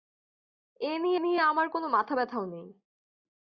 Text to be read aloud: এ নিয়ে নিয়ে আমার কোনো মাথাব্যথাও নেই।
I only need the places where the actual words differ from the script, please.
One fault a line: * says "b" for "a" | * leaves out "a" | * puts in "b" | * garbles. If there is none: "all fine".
all fine